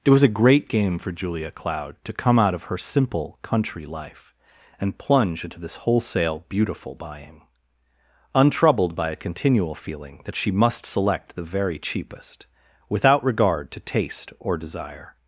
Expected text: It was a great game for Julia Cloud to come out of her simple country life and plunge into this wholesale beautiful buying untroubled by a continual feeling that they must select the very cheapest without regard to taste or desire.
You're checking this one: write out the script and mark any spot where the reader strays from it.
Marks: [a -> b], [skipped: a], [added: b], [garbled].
It was a great game for Julia Cloud to come out of her simple country life and plunge into this wholesale beautiful buying untroubled by a continual feeling that [they -> she] must select the very cheapest without regard to taste or desire.